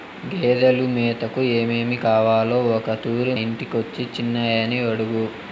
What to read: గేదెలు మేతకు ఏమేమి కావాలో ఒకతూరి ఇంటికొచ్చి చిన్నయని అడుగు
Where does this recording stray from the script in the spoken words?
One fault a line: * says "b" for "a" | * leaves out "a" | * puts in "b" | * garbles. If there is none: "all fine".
all fine